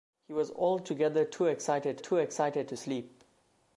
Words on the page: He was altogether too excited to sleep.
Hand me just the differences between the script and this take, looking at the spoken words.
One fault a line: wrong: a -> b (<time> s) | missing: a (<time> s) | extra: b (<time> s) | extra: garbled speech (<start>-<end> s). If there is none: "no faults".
extra: too excited (2.0 s)